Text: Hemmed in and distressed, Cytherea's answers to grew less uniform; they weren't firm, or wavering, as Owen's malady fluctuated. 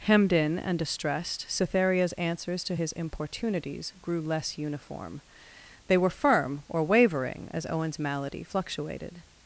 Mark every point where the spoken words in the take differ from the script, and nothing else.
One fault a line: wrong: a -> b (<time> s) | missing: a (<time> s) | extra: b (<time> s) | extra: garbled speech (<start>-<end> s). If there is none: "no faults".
extra: his importunities (2.7 s)
wrong: weren't -> were (6.0 s)